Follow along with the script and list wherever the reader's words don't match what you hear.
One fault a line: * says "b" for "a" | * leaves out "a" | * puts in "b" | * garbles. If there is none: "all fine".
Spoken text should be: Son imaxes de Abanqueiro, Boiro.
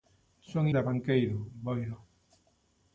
* leaves out "imaxes"